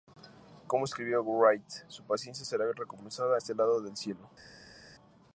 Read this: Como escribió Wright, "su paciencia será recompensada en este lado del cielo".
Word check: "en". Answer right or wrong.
wrong